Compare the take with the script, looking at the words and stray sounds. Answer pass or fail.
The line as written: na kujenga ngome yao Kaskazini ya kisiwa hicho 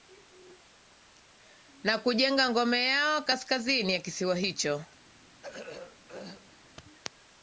fail